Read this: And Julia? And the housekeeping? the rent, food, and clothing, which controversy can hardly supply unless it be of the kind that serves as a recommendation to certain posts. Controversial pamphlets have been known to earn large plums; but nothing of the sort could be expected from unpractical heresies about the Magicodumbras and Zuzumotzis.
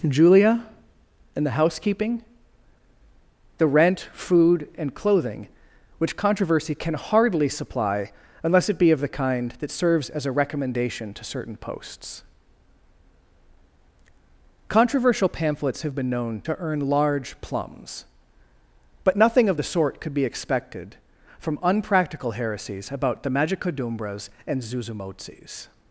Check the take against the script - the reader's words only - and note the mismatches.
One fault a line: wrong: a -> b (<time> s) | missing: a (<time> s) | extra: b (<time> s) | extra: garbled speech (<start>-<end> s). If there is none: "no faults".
missing: And (0.1 s)